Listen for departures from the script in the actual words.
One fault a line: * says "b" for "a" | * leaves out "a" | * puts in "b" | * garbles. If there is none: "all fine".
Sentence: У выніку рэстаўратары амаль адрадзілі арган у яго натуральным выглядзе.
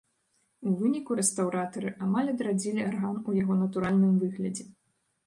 all fine